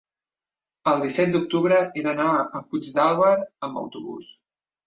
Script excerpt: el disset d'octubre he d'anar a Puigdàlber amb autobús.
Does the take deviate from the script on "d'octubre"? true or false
false